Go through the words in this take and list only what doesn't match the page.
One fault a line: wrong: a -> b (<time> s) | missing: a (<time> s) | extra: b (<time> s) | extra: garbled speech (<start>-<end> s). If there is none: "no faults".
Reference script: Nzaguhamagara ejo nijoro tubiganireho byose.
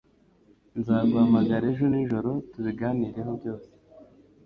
no faults